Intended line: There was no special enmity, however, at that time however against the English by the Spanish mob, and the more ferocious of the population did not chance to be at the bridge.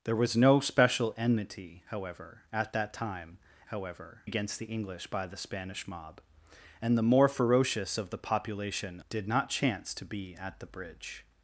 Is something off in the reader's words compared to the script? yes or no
no